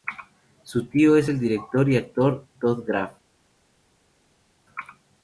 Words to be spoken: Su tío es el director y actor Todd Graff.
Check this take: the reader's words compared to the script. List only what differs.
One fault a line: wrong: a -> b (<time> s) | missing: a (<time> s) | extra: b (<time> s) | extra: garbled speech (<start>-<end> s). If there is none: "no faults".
no faults